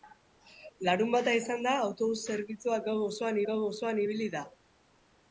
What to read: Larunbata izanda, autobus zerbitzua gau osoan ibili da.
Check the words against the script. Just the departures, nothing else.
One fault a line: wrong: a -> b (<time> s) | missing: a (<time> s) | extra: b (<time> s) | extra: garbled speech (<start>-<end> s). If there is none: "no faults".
extra: gau osoan (3.5 s)